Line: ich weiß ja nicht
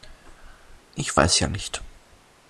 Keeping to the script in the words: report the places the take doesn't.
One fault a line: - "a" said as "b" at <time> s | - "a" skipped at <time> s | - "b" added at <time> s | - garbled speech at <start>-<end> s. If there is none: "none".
none